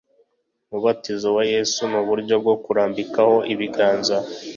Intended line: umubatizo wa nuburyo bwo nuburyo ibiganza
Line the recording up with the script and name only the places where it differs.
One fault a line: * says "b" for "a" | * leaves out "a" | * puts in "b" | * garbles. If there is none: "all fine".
* puts in "yesu"
* says "kurambikaho" for "nuburyo"